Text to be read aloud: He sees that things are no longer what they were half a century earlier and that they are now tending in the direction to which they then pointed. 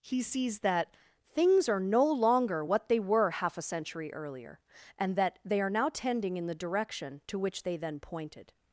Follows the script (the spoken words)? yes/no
yes